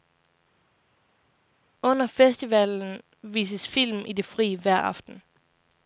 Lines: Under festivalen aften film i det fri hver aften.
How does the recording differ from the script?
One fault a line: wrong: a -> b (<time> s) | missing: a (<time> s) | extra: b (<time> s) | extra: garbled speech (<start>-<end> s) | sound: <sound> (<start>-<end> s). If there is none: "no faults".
wrong: aften -> vises (3.2 s)